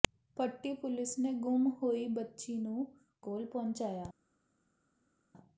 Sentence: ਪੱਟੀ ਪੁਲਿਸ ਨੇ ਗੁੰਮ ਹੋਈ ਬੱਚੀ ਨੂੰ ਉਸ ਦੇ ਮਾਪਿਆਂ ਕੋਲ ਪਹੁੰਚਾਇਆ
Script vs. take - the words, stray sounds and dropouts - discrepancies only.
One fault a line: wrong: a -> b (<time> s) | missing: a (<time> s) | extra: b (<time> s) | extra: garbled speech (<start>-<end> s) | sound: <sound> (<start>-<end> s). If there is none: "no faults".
missing: ਉਸ ਦੇ ਮਾਪਿਆਂ (2.9 s)